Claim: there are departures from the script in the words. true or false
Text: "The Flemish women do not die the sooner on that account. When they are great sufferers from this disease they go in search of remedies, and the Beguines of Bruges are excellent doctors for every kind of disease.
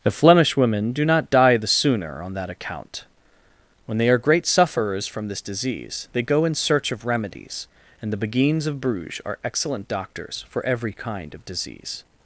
false